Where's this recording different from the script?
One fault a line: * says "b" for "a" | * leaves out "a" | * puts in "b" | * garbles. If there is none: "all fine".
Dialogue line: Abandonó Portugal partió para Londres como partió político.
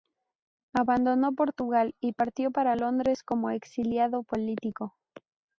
* puts in "y"
* says "exiliado" for "partió"